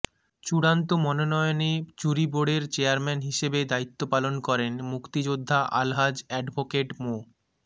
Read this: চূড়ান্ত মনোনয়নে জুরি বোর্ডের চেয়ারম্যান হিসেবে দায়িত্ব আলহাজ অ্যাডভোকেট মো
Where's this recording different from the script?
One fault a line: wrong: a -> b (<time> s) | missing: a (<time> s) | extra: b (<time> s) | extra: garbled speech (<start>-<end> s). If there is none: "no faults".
extra: পালন করেন মুক্তিযোদ্ধা (4.1 s)